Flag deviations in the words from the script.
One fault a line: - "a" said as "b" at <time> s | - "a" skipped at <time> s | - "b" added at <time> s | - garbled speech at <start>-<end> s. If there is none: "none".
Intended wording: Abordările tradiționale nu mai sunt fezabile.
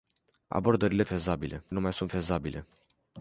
- "tradiționale" said as "fezabile" at 1.1 s